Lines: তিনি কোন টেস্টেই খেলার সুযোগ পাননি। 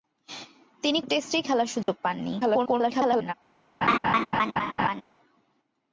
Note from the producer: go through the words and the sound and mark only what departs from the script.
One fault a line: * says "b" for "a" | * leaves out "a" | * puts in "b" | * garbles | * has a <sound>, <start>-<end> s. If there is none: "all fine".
* leaves out "কোন"
* has a dropout, 1.8-1.9 s
* garbles
* has a laugh, 3.8-5.0 s